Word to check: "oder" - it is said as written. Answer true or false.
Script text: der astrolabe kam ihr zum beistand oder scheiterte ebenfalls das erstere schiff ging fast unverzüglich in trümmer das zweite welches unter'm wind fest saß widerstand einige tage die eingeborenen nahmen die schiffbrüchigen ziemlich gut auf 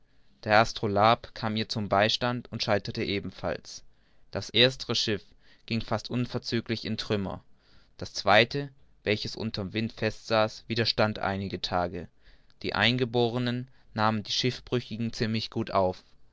false